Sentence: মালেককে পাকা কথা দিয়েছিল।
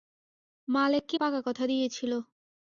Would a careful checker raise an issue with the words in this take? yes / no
no